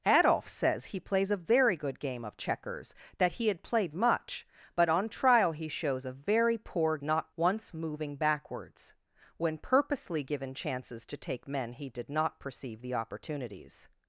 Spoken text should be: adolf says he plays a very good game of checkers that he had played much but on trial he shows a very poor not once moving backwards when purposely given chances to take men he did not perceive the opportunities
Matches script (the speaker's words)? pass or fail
pass